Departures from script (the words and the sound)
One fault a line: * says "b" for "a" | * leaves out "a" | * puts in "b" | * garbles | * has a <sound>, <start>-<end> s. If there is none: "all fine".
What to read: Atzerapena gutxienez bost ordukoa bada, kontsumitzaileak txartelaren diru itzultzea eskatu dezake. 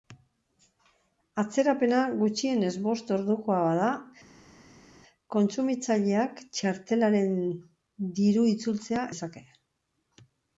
* leaves out "eskatu"